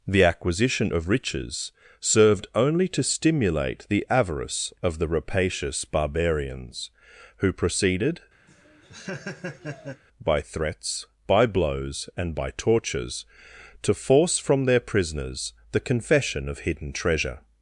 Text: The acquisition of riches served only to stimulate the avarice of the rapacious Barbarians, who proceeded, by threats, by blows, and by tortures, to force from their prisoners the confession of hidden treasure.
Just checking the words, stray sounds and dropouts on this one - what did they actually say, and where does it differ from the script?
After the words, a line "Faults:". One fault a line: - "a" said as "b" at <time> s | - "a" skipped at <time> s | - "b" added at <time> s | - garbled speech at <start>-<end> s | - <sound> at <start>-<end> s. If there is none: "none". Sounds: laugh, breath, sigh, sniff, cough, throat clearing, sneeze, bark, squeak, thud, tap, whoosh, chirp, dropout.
The acquisition of riches served only to stimulate the avarice of the rapacious Barbarians, who proceeded, by threats, by blows, and by tortures, to force from their prisoners the confession of hidden treasure.
Faults:
- laugh at 8.5-10.0 s